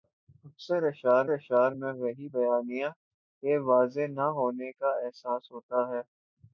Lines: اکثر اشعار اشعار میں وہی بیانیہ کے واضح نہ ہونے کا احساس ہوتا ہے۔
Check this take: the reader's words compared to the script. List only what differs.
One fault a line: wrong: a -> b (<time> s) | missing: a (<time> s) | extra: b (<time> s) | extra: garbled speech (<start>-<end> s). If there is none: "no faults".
no faults